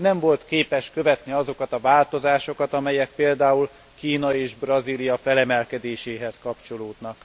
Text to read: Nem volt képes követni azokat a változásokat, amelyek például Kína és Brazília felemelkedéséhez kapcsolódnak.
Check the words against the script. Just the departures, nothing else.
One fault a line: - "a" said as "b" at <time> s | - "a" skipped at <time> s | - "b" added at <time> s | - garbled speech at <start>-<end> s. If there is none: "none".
none